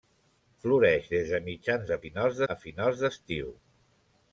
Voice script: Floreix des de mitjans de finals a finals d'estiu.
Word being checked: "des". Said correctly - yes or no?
yes